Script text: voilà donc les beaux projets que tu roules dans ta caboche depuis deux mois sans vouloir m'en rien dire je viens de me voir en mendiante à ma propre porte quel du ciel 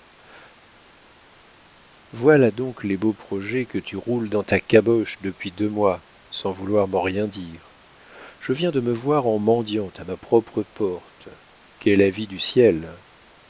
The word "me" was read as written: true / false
true